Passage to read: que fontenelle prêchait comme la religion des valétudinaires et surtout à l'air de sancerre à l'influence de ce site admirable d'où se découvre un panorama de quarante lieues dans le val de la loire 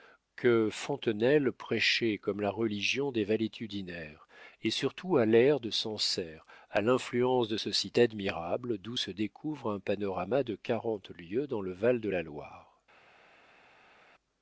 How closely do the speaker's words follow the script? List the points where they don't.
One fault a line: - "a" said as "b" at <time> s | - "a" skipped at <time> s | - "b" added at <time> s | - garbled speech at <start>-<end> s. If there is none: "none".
none